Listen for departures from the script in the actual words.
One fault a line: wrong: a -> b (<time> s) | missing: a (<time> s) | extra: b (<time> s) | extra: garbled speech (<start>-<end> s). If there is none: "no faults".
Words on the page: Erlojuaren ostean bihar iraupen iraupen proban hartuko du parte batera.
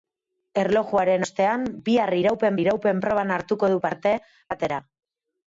no faults